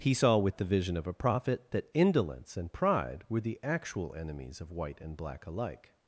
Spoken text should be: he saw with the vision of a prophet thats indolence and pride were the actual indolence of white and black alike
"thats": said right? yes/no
no